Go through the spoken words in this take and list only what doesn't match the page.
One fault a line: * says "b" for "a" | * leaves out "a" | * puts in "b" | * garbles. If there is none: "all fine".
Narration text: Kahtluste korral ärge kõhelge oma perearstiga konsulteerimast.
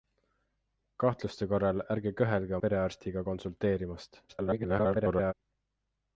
* leaves out "oma"
* garbles